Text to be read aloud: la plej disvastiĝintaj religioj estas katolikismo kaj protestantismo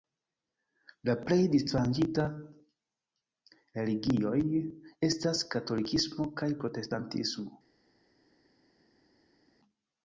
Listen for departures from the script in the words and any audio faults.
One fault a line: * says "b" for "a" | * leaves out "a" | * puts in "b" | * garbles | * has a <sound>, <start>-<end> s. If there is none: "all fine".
all fine